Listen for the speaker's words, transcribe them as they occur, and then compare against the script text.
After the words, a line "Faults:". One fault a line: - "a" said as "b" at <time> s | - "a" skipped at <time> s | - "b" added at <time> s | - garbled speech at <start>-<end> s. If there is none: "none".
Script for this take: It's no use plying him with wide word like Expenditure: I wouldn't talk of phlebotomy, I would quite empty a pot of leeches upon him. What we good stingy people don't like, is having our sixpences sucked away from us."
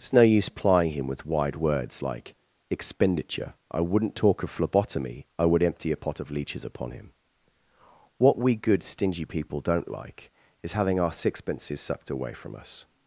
It's no use plying him with wide words like Expenditure: I wouldn't talk of phlebotomy, I would empty a pot of leeches upon him. What we good stingy people don't like, is having our sixpences sucked away from us."
Faults:
- "word" said as "words" at 1.6 s
- "quite" skipped at 5.6 s